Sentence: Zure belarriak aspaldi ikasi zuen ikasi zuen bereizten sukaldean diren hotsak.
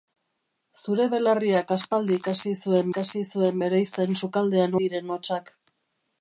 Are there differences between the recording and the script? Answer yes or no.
no